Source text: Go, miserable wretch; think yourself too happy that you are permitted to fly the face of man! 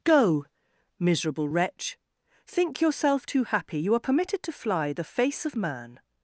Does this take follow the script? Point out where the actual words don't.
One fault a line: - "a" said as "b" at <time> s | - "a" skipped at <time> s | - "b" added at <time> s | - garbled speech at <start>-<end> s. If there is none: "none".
- "that" skipped at 3.8 s